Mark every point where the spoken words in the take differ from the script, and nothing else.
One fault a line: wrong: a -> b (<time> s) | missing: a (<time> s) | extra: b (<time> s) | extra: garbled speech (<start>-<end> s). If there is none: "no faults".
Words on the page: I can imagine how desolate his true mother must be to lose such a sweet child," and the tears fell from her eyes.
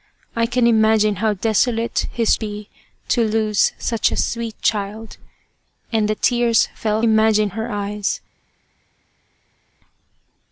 missing: true mother must (2.4 s)
wrong: from -> imagine (7.0 s)